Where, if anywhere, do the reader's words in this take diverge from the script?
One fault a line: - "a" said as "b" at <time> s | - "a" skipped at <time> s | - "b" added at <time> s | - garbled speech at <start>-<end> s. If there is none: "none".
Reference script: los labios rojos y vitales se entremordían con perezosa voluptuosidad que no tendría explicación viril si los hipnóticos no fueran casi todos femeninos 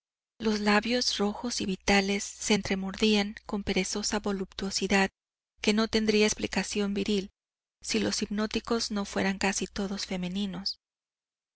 none